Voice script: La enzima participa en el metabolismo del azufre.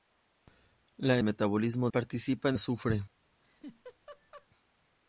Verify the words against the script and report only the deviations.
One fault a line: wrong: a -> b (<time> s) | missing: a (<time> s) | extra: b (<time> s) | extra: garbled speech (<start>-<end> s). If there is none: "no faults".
wrong: enzima -> metabolismo (1.2 s)
missing: el metabolismo del (2.6 s)